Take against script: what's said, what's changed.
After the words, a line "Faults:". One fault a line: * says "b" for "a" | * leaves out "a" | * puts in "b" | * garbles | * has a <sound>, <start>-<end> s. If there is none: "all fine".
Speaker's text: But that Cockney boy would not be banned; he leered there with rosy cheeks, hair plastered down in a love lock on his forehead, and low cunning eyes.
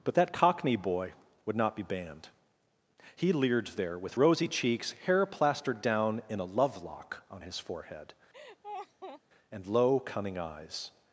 But that Cockney boy would not be banned; he leered there with rosy cheeks, hair plastered down in a love lock on his forehead, and low cunning eyes.
Faults:
* has a laugh, 8.3-9.2 s